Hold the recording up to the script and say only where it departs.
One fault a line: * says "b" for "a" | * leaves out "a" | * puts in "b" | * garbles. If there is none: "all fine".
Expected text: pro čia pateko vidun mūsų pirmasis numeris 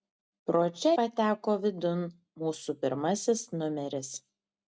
all fine